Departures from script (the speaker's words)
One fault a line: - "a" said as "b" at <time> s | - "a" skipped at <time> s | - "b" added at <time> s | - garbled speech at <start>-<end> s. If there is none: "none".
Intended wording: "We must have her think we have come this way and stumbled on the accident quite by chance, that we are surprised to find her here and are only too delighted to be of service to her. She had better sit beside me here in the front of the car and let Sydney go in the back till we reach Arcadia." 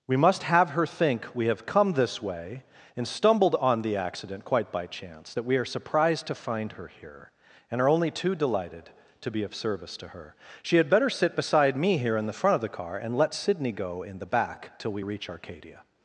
none